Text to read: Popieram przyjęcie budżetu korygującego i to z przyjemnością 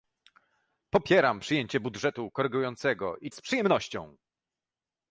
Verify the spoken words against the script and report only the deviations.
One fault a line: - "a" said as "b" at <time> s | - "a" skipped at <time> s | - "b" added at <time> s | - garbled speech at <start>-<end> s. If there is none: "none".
- "to" skipped at 3.3 s